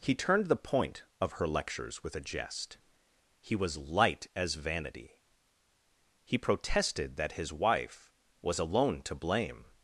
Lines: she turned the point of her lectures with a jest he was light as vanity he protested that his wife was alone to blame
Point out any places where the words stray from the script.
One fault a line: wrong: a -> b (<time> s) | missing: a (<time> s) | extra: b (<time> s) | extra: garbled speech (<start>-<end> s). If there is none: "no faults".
wrong: she -> he (0.0 s)